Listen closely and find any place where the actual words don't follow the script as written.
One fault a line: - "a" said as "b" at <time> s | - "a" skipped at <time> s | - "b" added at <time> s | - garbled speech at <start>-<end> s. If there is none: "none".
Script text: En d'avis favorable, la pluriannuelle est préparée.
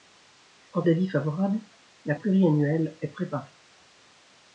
none